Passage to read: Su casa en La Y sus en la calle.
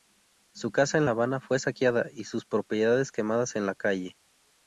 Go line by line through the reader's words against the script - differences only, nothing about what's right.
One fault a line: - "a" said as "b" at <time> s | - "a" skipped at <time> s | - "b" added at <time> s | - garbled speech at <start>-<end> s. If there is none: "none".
- "Habana fue saqueada" added at 1.1 s
- "propiedades quemadas" added at 2.4 s